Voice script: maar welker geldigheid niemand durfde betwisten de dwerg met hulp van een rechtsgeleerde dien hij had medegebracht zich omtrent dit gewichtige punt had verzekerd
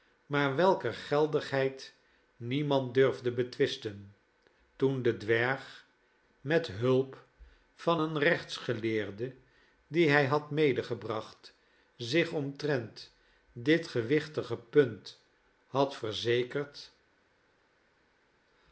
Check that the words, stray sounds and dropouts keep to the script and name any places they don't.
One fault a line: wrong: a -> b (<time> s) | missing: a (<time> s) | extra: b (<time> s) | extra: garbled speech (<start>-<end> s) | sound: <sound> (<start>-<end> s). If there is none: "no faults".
extra: toen (4.8 s)